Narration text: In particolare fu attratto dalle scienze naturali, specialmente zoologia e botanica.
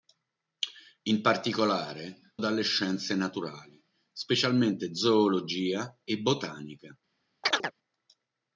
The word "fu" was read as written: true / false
false